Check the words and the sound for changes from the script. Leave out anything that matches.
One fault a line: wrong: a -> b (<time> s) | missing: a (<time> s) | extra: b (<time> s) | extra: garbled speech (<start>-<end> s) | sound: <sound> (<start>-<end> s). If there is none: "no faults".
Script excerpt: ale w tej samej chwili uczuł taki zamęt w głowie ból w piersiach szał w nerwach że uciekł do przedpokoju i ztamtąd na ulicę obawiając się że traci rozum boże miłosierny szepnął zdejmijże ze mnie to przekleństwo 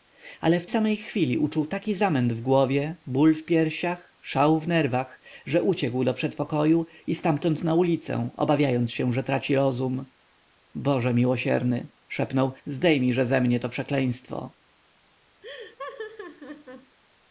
missing: tej (0.7 s)
sound: laugh (15.4-17.0 s)